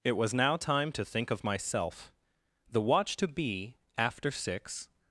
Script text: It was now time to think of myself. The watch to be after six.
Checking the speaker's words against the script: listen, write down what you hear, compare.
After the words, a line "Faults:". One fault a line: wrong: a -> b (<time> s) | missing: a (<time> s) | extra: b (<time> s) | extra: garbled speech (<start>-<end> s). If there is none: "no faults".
It was now time to think of myself. The watch to be after six.
Faults:
no faults